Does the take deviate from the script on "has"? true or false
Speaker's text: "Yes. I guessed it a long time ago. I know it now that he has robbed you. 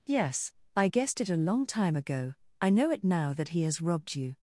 false